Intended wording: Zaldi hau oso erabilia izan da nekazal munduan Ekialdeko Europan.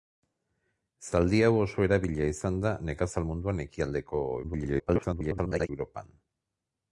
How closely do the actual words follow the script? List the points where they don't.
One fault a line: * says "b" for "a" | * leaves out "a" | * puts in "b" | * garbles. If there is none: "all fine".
* garbles